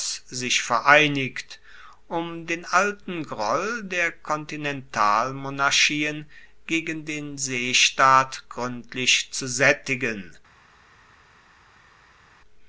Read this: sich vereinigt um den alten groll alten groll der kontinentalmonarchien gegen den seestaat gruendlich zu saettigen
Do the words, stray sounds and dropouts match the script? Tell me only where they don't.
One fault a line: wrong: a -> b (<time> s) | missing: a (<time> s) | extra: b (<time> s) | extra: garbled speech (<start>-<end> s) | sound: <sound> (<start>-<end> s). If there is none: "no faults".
missing: alten groll (3.8 s)